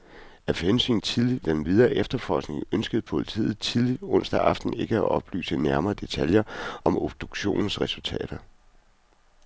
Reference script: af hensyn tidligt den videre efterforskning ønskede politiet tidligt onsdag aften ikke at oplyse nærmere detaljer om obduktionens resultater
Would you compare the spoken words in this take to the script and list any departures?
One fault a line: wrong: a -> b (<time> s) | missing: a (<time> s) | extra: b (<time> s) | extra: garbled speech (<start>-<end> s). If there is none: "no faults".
no faults